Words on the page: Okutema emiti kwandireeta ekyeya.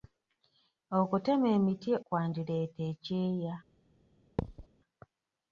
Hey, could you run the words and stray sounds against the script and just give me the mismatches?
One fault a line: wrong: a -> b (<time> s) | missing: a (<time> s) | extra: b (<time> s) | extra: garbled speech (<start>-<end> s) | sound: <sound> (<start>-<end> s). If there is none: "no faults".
sound: thud (4.4-4.7 s)